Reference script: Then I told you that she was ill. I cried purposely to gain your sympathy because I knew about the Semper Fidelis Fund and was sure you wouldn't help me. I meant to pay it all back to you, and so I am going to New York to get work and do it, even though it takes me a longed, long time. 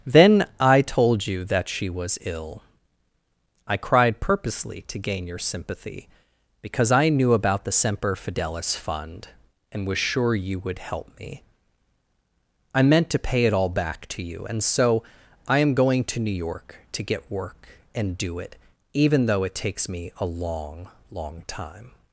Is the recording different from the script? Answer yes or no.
yes